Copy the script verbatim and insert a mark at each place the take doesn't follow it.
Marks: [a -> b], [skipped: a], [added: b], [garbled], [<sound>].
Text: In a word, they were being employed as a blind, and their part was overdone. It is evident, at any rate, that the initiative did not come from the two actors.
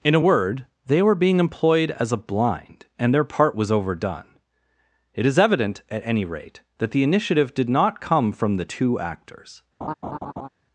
In a word, they were being employed as a blind, and their part was overdone. It is evident, at any rate, that the initiative did not come from the two actors. [laugh]